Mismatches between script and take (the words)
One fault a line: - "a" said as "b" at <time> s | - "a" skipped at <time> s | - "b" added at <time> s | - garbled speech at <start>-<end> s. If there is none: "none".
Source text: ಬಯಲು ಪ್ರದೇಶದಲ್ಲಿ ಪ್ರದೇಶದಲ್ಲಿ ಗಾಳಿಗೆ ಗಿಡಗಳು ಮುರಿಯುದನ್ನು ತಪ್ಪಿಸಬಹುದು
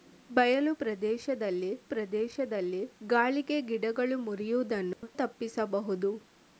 none